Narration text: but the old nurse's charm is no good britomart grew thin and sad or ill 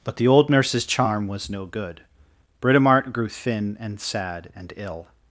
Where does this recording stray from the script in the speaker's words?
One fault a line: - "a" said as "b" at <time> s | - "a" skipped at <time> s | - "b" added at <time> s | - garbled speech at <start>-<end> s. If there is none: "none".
- "is" said as "was" at 1.3 s
- "or" said as "and" at 4.5 s